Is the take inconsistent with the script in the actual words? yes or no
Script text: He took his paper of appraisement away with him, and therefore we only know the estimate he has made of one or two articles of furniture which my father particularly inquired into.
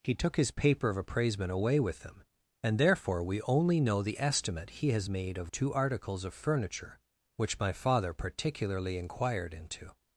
yes